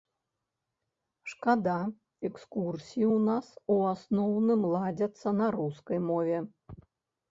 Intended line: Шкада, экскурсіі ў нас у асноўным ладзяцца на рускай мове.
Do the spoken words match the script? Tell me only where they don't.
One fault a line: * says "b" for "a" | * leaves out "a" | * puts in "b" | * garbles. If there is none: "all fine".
all fine